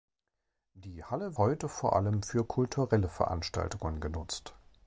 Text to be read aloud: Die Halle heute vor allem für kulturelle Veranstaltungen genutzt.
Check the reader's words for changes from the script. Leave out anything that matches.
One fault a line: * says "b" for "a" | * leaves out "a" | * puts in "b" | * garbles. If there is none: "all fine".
all fine